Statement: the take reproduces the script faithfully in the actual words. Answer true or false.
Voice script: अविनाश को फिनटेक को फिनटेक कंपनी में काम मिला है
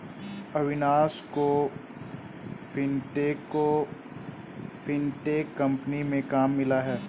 true